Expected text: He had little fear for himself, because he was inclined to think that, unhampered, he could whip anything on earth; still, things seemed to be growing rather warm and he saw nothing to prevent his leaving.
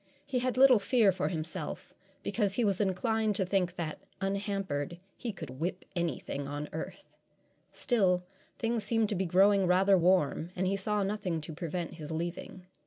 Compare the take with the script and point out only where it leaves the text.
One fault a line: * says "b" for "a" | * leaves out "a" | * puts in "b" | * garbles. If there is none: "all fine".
all fine